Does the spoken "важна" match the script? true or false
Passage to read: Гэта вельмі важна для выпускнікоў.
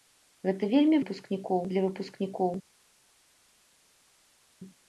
false